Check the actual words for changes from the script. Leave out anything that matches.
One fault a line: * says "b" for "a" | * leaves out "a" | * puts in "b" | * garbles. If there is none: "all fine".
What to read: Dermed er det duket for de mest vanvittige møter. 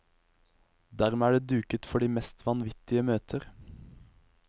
all fine